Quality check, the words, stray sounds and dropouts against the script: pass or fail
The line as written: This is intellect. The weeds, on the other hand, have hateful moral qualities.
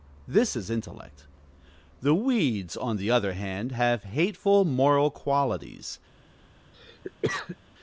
fail